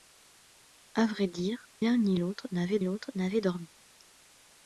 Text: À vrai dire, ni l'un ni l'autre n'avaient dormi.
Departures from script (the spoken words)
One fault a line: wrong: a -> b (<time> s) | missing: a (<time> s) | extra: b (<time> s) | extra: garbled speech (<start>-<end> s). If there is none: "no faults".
extra: l'un (1.8 s)
wrong: l'un ni -> l'autre n'avaient (2.1 s)